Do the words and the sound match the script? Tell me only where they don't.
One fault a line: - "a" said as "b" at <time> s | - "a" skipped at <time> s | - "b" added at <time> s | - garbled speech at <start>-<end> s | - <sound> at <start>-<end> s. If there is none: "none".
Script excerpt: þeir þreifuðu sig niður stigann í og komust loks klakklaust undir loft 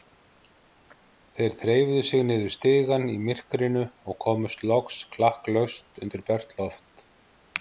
- "myrkrinu" added at 3.3 s
- "bert" added at 6.3 s